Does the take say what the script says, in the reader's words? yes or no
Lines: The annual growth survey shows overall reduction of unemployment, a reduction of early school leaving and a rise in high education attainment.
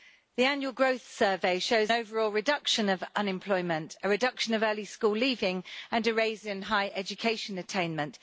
yes